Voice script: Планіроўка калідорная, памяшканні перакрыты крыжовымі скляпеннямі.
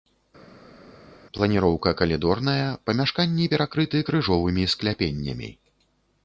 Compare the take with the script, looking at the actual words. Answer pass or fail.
pass